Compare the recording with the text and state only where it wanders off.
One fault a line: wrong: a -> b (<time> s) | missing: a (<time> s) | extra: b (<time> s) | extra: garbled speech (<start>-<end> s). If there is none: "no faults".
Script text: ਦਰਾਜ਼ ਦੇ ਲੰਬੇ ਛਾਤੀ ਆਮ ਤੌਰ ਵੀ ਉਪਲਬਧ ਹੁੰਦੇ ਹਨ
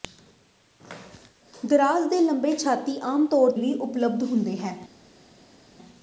no faults